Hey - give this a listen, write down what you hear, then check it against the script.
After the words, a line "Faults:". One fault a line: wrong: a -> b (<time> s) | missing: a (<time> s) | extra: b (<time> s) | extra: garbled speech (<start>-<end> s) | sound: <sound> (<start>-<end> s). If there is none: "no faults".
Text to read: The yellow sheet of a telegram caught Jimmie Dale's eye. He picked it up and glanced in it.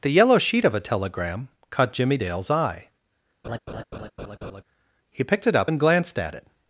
The yellow sheet of a telegram caught Jimmie Dale's eye. He picked it up and glanced at it.
Faults:
sound: laugh (3.4-4.6 s)
wrong: in -> at (6.2 s)